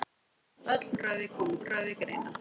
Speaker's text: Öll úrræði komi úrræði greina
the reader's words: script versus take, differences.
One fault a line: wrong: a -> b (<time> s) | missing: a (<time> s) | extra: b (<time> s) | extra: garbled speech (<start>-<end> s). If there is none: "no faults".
no faults